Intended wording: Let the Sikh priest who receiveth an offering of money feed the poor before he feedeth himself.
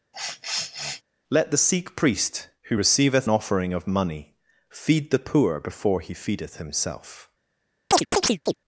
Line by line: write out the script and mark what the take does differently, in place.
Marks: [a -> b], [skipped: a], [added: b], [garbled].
Let the Sikh priest who receiveth [skipped: an] offering of money feed the poor before he feedeth himself.